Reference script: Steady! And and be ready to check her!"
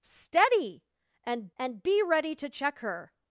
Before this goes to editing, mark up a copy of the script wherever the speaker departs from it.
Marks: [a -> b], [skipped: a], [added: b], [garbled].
Steady! And and be ready to check her!"